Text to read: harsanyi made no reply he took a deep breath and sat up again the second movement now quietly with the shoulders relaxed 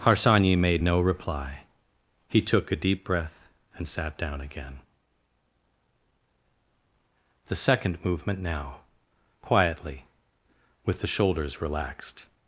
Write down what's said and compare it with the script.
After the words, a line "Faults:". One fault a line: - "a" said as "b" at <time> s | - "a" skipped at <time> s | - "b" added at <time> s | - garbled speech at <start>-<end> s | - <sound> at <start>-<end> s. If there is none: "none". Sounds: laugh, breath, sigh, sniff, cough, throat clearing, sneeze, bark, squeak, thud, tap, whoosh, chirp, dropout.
harsanyi made no reply he took a deep breath and sat down again the second movement now quietly with the shoulders relaxed
Faults:
- "up" said as "down" at 4.2 s